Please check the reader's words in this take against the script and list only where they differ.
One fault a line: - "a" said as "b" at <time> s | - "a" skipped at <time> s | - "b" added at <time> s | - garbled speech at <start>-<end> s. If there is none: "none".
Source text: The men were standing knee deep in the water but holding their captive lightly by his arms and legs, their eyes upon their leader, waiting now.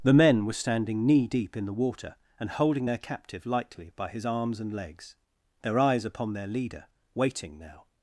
- "but" said as "and" at 2.4 s